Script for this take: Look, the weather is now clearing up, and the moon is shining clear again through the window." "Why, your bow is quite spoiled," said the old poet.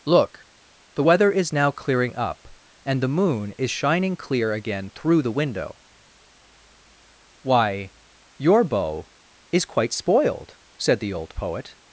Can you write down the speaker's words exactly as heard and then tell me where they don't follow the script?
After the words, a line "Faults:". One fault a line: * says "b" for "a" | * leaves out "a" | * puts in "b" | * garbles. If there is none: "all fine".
Look, the weather is now clearing up, and the moon is shining clear again through the window." "Why, your bow is quite spoiled," said the old poet.
Faults:
all fine